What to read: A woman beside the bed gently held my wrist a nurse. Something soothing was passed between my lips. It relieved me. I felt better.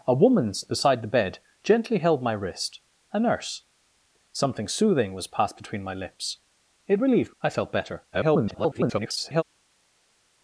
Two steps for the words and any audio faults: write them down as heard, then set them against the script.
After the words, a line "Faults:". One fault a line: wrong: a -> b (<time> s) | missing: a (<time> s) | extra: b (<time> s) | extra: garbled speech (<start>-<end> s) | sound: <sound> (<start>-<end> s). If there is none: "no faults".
A woman beside the bed gently held my wrist a nurse. Something soothing was passed between my lips. It relieved. I felt better. [garbled]
Faults:
missing: me (7.4 s)
extra: garbled speech (8.1-9.4 s)